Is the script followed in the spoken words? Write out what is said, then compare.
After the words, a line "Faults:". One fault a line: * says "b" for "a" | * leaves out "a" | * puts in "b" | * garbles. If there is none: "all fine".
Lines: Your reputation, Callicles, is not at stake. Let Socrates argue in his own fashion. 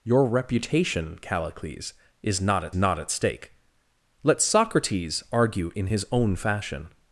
Your reputation, Callicles, is not at not at stake. Let Socrates argue in his own fashion.
Faults:
* puts in "not at"